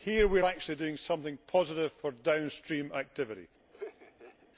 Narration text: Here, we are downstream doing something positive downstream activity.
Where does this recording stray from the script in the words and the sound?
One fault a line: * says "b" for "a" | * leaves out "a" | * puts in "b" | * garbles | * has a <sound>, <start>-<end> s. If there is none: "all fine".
* says "actually" for "downstream"
* puts in "for"
* has a laugh, 3.7-4.5 s